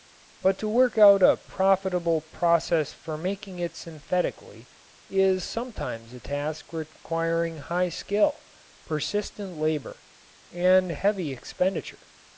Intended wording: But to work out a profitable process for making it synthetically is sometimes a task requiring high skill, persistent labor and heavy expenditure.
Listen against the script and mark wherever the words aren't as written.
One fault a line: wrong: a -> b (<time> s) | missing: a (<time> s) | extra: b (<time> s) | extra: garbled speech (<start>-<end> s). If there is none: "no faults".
no faults